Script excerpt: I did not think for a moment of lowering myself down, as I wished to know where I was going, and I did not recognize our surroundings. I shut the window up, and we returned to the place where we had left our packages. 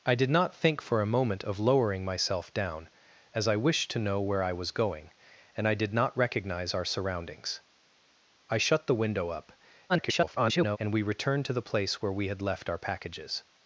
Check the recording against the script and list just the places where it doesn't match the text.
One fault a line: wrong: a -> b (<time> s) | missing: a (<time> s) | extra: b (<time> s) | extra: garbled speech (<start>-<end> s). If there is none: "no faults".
extra: garbled speech (9.9-10.8 s)